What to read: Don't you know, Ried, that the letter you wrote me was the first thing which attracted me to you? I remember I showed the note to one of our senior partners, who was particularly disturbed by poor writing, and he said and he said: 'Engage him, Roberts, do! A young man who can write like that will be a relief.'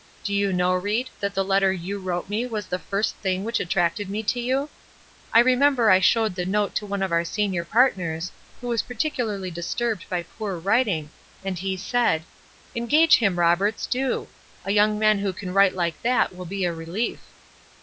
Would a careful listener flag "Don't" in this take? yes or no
yes